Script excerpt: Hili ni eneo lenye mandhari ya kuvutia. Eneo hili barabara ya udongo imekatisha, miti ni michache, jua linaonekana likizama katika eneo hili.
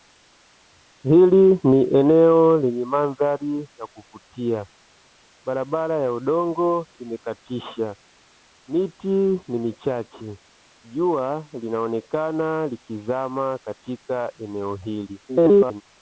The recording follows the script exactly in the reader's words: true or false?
false